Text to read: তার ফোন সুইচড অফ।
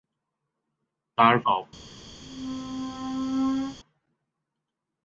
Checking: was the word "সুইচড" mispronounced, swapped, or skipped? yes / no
yes